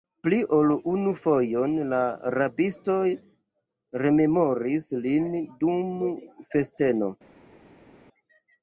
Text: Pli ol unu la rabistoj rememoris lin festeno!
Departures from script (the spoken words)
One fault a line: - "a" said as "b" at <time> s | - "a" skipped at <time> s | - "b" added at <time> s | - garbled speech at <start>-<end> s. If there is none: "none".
- "fojon" added at 1.2 s
- "dum" added at 5.7 s